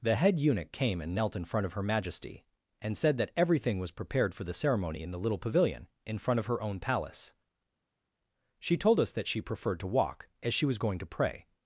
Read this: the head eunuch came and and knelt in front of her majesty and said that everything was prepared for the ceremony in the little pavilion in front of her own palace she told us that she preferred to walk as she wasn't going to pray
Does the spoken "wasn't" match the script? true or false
false